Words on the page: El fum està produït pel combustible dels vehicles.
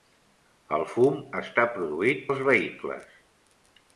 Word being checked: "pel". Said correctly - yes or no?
no